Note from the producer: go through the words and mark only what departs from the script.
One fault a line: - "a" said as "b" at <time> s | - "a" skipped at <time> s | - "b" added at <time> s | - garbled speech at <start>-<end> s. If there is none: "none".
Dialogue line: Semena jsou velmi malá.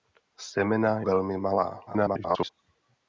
- "jsou" skipped at 1.0 s
- garbled speech at 1.9-2.5 s